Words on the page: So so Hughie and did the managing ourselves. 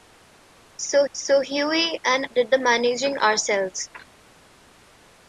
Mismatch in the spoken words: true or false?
false